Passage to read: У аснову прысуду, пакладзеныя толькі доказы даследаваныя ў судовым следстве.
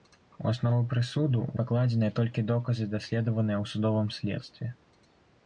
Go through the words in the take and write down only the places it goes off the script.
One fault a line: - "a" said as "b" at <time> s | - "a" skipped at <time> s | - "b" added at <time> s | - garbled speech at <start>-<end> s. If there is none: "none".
none